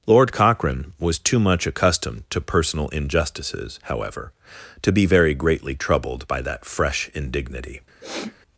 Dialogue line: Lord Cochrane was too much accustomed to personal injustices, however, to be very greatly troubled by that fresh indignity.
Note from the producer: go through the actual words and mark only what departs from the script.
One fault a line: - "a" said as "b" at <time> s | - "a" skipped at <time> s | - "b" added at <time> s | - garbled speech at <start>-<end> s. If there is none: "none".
none